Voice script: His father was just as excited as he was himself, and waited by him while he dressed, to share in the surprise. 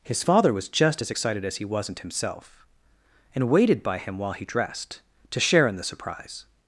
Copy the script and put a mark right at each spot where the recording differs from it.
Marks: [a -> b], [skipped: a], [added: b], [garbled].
His father was just as excited as he [was -> wasn't] himself, and waited by him while he dressed, to share in the surprise.